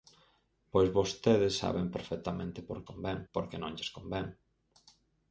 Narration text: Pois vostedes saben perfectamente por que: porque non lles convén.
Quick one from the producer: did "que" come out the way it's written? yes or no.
no